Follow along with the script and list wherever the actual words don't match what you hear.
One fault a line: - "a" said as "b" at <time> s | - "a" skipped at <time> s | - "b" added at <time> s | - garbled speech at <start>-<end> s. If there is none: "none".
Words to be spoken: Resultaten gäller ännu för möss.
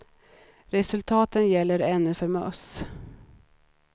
none